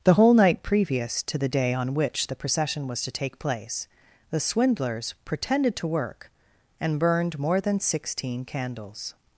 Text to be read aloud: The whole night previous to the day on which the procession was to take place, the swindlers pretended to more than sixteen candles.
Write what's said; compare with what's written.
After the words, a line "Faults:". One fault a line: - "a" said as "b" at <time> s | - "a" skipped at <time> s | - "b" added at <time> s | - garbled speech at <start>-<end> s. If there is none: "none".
The whole night previous to the day on which the procession was to take place, the swindlers pretended to work, and burned more than sixteen candles.
Faults:
- "work and burned" added at 5.9 s